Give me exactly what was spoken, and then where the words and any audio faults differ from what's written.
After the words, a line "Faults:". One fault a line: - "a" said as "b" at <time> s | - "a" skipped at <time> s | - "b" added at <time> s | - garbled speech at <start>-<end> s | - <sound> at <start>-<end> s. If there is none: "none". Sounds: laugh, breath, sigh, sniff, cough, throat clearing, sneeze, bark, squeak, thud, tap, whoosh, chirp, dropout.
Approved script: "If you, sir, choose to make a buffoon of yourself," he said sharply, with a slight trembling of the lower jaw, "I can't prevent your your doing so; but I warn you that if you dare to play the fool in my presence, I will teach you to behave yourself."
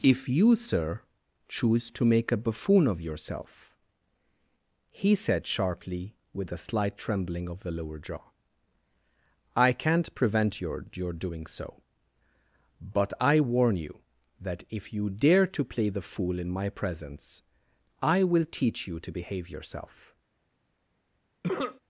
"If you, sir, choose to make a buffoon of yourself," he said sharply, with a slight trembling of the lower jaw, "I can't prevent your your doing so; but I warn you that if you dare to play the fool in my presence, I will teach you to behave yourself."
Faults:
- cough at 21.4-21.8 s